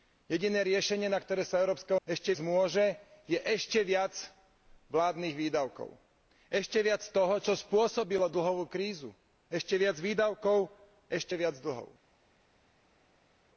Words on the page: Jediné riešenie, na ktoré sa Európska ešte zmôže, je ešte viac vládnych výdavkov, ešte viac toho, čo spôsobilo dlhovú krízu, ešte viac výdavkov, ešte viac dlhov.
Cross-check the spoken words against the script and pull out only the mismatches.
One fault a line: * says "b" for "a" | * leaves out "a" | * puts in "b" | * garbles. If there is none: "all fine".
all fine